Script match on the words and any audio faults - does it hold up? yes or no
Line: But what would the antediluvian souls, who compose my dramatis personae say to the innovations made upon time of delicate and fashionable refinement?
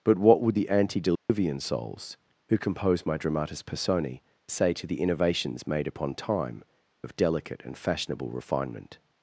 no